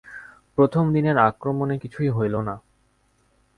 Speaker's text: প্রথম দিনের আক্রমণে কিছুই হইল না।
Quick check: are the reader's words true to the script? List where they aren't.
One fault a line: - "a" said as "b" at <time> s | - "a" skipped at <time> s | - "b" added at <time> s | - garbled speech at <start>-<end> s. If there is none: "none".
none